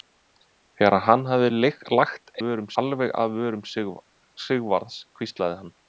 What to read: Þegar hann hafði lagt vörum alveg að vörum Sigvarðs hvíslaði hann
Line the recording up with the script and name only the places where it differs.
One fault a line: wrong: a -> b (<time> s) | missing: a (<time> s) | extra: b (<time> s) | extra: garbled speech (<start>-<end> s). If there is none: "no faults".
no faults